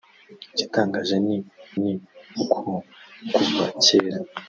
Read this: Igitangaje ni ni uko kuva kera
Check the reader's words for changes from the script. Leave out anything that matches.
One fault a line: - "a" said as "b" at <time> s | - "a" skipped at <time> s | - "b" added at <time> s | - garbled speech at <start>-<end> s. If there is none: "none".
none